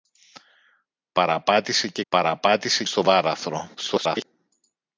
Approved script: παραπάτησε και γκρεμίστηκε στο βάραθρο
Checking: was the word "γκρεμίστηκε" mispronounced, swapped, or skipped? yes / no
yes